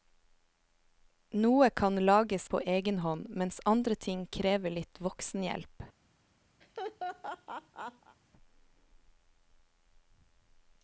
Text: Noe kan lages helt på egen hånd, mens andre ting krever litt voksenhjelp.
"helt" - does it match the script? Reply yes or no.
no